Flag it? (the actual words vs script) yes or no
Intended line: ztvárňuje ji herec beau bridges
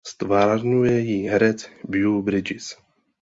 no